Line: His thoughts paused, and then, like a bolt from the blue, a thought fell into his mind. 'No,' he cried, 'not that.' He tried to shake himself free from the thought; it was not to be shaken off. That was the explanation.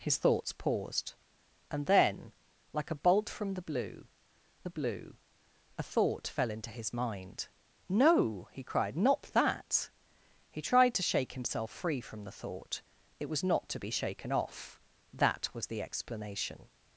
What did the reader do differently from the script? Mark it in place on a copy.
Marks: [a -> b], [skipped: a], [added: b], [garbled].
His thoughts paused, and then, like a bolt from the blue, [added: the blue] a thought fell into his mind. 'No,' he cried, 'not that.' He tried to shake himself free from the thought; it was not to be shaken off. That was the explanation.